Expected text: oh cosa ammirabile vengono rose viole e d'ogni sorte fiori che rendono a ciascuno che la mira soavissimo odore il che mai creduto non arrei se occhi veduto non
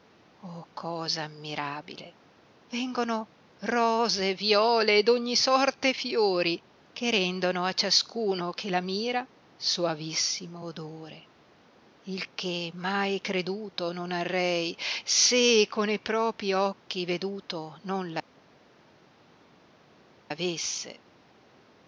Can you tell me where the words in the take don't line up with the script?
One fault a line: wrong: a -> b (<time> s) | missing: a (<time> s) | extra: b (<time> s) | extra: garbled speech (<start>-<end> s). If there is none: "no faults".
extra: con e propi (15.7 s)